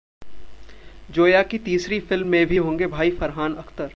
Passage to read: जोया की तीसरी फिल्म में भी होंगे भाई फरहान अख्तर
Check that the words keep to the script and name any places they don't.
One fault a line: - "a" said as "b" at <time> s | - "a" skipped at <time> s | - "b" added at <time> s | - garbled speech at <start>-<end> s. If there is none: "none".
none